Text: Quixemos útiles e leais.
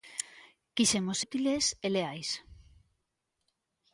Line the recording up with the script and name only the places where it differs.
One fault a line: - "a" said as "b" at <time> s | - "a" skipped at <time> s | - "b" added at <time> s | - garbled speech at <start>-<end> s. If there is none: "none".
none